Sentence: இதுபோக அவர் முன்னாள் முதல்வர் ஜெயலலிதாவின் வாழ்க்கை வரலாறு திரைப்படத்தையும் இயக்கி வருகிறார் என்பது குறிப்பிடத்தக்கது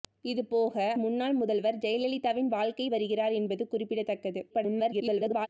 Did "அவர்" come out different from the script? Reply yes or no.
yes